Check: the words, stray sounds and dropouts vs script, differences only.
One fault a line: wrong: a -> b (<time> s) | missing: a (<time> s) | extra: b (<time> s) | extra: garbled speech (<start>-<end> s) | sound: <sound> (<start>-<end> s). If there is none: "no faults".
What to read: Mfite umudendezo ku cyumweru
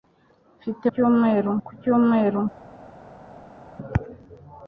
wrong: umudendezo -> cyumweru (0.9 s)